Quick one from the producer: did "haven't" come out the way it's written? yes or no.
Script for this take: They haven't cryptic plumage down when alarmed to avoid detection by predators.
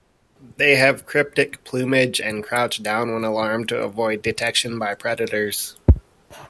no